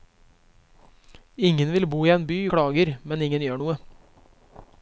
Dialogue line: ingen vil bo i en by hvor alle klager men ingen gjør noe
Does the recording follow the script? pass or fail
fail